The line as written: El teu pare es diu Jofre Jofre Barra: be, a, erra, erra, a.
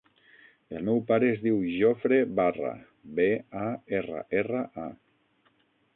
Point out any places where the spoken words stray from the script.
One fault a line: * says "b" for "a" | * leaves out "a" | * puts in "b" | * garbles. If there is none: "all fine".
* says "meu" for "teu"
* leaves out "Jofre"